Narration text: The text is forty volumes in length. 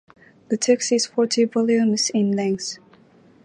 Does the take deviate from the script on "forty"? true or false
false